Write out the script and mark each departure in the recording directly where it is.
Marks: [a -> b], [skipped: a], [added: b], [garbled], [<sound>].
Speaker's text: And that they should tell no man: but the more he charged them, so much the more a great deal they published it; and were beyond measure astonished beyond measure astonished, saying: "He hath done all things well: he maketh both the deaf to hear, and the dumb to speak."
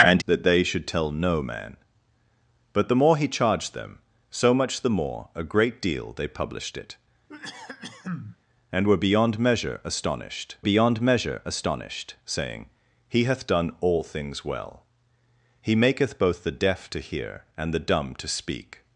And that they should tell no man: but the more he charged them, so much the more a great deal they published it; [cough] and were beyond measure astonished beyond measure astonished, saying: "He hath done all things well: he maketh both the deaf to hear, and the dumb to speak."